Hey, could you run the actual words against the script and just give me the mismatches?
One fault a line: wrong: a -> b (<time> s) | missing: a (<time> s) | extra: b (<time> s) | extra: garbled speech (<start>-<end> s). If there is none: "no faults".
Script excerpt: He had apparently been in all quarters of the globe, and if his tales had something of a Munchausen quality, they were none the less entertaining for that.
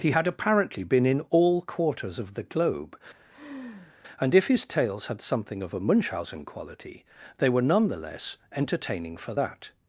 no faults